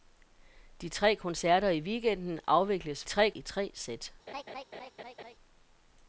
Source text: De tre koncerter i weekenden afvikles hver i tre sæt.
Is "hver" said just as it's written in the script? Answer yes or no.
no